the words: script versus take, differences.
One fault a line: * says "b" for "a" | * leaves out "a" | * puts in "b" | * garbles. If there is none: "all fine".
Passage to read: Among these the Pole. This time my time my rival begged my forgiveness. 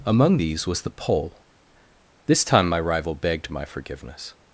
* puts in "was"
* leaves out "time my"